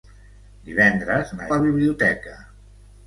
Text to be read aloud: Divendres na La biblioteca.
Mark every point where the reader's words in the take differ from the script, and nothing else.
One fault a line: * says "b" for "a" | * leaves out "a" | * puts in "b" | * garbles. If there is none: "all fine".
all fine